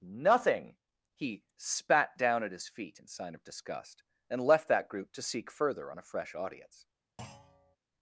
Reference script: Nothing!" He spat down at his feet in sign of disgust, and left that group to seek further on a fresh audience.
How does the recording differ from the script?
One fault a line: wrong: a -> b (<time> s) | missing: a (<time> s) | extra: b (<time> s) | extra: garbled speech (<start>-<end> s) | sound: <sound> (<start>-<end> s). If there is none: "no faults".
sound: thud (7.2-7.8 s)